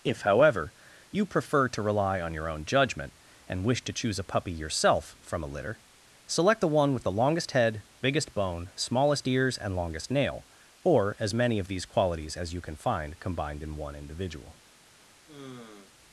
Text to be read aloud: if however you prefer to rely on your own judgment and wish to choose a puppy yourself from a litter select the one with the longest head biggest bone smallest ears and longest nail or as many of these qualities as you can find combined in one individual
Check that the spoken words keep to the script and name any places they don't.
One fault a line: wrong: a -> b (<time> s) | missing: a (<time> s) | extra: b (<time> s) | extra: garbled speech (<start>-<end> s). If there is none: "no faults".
no faults